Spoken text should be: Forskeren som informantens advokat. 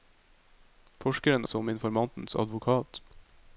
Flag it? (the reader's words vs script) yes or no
no